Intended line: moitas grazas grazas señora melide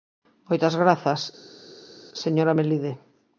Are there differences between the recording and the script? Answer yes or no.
yes